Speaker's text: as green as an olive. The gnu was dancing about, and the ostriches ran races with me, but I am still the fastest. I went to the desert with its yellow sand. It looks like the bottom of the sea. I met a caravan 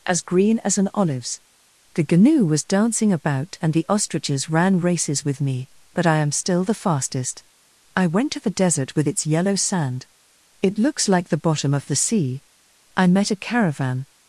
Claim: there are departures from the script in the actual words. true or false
true